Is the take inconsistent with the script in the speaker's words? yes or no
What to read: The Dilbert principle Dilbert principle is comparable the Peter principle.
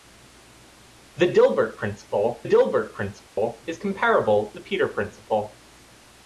no